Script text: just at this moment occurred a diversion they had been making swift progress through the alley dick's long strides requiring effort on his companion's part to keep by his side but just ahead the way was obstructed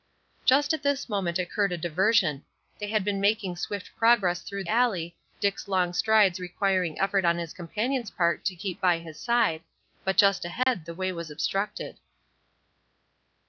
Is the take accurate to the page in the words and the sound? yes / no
no